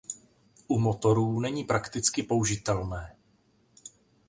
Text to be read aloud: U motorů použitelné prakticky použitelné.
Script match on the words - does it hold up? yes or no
no